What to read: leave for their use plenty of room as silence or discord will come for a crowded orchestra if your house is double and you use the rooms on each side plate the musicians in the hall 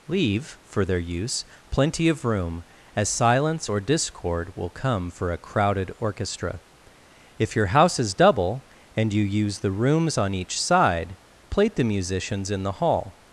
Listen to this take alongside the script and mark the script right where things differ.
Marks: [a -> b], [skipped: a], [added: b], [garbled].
leave for their use plenty of room as silence or discord will come for a crowded orchestra if your house is double and you use the rooms on each side plate the musicians in the hall